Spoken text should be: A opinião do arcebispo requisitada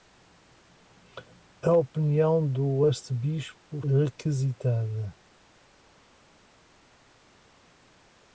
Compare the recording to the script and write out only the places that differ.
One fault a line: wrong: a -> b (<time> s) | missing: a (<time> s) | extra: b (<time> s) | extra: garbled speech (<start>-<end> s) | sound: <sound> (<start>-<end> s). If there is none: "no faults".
no faults